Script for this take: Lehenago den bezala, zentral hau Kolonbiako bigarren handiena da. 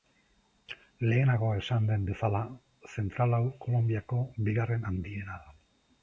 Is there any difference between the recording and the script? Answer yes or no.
yes